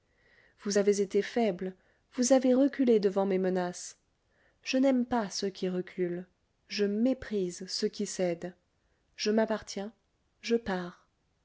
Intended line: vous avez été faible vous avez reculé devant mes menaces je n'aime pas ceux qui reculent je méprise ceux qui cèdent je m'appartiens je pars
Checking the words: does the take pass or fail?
pass